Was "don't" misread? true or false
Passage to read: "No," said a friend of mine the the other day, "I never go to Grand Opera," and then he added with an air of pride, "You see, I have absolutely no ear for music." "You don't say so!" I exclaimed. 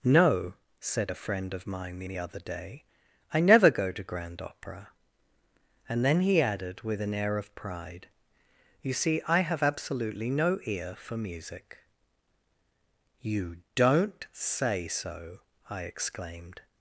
false